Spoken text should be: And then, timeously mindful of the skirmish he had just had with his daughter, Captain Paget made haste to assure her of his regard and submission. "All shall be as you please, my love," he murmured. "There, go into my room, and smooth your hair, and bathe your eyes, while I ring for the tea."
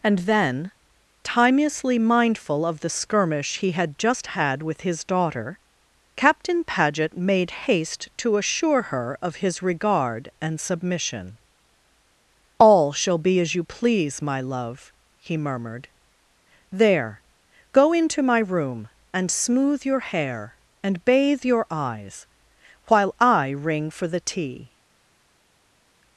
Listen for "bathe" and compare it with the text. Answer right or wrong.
right